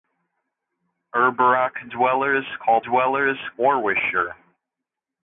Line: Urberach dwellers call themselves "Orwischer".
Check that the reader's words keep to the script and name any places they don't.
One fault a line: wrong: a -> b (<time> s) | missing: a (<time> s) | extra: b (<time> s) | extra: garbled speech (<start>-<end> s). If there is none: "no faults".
wrong: themselves -> dwellers (2.8 s)